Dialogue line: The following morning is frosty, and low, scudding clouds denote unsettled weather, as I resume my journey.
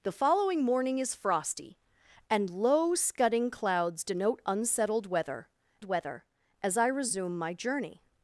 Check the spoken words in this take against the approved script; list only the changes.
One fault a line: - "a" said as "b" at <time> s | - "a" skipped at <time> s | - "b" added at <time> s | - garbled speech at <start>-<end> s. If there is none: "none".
- "weather" added at 5.8 s